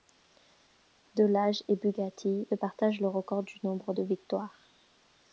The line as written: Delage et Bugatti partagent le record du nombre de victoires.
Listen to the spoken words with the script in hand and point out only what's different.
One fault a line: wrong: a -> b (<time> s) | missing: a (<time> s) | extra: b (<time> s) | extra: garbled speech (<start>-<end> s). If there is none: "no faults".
no faults